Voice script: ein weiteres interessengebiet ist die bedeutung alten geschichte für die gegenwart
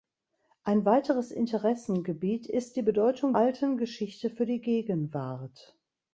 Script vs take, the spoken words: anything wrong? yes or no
no